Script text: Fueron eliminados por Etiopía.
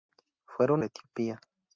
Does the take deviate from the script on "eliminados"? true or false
true